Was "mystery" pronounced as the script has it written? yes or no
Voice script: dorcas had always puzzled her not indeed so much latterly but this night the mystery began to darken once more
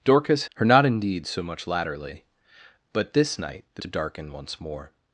no